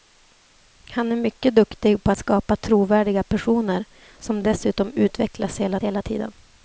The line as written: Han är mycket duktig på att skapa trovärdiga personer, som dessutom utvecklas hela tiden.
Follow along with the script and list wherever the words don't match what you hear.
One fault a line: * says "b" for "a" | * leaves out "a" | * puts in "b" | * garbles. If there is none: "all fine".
* leaves out "att"
* puts in "hela"